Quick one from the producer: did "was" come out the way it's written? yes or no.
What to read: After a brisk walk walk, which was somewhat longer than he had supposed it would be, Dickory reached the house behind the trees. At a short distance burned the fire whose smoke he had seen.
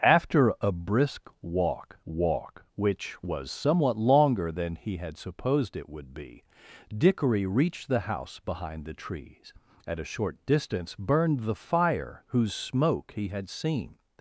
yes